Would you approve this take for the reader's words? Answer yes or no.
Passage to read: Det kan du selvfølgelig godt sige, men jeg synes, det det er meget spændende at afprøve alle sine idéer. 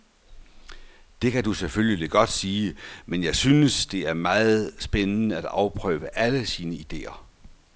no